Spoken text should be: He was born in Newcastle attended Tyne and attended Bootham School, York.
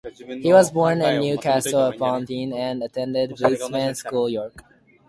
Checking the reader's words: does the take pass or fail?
fail